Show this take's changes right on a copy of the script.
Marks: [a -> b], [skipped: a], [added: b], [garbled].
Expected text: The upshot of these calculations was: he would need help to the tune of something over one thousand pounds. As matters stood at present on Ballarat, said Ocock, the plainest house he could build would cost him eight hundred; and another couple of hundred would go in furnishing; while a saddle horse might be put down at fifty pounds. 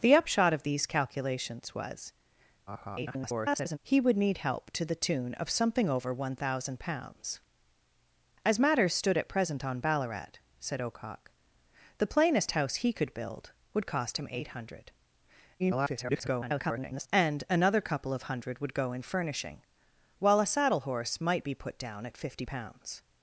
The upshot of these calculations was: [garbled] he would need help to the tune of something over one thousand pounds. As matters stood at present on Ballarat, said Ocock, the plainest house he could build would cost him eight hundred; [garbled] and another couple of hundred would go in furnishing; while a saddle horse might be put down at fifty pounds.